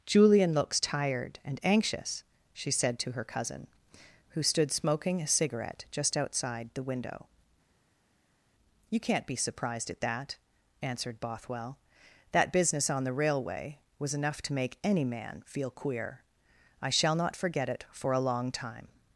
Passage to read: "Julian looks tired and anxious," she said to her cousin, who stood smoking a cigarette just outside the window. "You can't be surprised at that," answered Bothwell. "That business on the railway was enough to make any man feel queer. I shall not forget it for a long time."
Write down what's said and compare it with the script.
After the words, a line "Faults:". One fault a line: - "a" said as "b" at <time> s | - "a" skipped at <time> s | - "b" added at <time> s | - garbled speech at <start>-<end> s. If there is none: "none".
"Julian looks tired and anxious," she said to her cousin, who stood smoking a cigarette just outside the window. "You can't be surprised at that," answered Bothwell. "That business on the railway was enough to make any man feel queer. I shall not forget it for a long time."
Faults:
none